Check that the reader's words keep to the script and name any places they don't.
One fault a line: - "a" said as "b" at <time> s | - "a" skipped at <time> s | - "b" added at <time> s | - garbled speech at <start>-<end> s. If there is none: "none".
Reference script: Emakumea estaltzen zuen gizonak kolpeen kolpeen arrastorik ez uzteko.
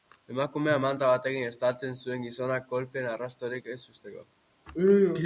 - "manta batekin" added at 0.8 s
- "kolpeen" skipped at 3.1 s